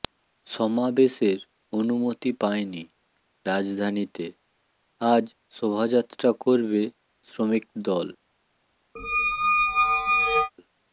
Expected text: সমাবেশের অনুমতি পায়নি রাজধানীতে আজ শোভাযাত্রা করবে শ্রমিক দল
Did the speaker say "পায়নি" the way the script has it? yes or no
yes